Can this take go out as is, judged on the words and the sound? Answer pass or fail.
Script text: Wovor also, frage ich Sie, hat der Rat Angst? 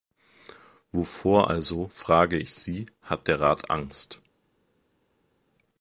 pass